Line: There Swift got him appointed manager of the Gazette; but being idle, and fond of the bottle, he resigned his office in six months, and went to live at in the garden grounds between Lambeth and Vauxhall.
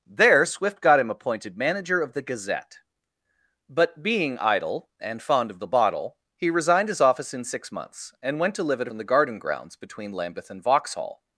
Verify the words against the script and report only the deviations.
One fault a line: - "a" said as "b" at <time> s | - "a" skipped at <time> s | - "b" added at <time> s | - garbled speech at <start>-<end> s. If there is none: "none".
none